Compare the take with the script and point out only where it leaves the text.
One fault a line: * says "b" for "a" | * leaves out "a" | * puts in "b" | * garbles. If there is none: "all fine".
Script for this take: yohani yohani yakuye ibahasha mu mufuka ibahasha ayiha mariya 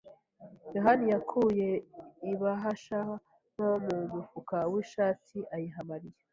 * leaves out "yohani"
* puts in "nto"
* says "w'ishati" for "ibahasha"